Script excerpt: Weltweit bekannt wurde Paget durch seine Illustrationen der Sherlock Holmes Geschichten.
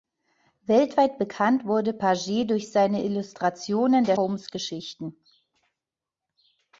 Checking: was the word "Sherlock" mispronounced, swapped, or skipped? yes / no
yes